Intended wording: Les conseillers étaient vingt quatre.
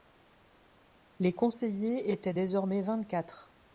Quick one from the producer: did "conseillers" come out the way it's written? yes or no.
yes